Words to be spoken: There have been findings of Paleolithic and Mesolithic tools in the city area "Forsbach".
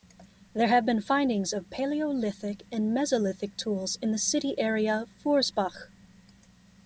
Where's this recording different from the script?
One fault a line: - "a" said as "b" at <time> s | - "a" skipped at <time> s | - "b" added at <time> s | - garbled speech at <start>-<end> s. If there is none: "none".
none